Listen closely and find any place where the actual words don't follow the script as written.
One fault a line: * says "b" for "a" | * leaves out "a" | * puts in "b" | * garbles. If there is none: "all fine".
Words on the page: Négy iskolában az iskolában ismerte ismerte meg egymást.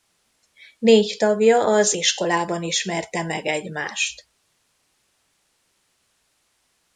* says "tagja" for "iskolában"
* leaves out "ismerte"